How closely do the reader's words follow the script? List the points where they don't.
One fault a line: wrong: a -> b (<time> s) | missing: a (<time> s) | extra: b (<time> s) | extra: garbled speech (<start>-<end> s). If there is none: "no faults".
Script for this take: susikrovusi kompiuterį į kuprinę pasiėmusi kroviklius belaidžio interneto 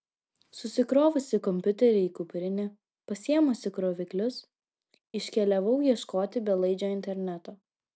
extra: iškeliavau ieškoti (5.2 s)